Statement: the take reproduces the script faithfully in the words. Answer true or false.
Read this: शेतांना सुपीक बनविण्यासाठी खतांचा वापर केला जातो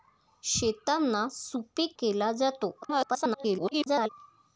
false